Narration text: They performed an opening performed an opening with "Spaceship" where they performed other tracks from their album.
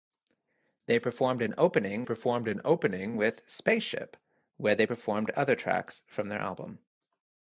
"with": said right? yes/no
yes